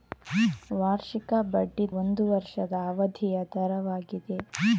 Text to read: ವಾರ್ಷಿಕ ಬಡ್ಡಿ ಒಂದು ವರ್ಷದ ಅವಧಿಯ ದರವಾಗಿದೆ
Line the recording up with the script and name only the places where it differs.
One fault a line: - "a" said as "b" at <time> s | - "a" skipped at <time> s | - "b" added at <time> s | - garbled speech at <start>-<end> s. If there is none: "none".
none